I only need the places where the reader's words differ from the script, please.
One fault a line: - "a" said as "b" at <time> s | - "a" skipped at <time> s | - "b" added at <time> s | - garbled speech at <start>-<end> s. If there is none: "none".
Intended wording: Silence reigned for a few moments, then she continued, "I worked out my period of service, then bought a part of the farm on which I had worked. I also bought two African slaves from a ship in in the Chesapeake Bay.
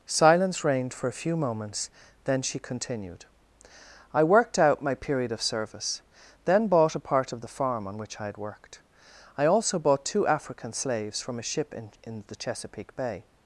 none